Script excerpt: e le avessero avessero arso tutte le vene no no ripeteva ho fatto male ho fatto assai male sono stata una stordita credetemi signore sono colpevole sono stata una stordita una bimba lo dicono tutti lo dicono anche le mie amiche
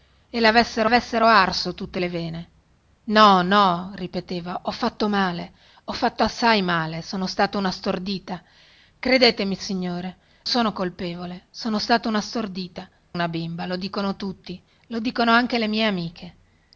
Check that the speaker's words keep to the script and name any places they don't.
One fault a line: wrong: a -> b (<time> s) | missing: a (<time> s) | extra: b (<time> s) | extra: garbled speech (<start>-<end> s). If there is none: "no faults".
no faults